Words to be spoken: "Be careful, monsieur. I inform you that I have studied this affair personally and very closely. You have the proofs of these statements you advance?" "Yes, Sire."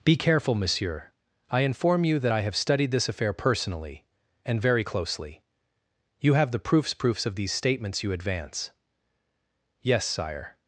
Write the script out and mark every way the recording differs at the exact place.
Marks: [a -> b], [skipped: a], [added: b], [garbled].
"Be careful, monsieur. I inform you that I have studied this affair personally and very closely. You have the proofs [added: proofs] of these statements you advance?" "Yes, Sire."